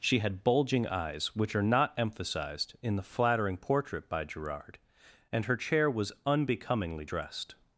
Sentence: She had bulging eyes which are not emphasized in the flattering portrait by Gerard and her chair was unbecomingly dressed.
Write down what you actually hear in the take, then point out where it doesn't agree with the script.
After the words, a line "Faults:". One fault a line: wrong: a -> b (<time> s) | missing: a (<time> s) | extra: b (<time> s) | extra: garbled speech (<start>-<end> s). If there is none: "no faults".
She had bulging eyes which are not emphasized in the flattering portrait by Gerard and her chair was unbecomingly dressed.
Faults:
no faults